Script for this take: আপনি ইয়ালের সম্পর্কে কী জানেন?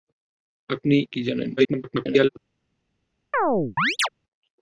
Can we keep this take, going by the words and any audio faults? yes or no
no